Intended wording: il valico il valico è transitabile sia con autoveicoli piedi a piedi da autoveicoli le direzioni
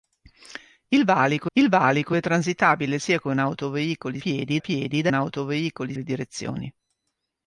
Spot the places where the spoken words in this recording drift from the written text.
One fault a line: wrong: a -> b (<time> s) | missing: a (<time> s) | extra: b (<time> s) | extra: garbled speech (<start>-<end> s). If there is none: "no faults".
no faults